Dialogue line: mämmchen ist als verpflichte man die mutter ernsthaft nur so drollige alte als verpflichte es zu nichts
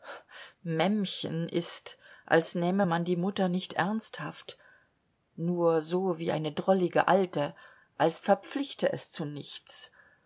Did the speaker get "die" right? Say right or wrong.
right